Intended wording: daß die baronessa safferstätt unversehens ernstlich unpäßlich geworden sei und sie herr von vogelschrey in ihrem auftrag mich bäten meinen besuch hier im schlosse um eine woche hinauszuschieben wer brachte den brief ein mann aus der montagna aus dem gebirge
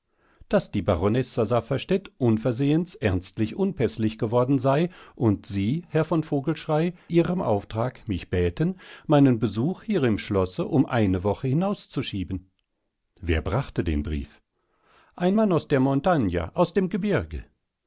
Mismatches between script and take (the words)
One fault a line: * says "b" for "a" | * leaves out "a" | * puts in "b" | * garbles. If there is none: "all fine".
* leaves out "in"